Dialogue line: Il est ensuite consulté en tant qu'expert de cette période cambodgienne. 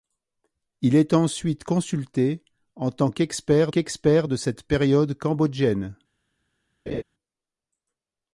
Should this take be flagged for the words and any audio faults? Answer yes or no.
yes